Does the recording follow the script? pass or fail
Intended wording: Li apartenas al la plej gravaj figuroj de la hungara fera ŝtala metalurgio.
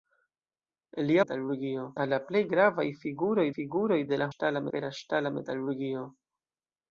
fail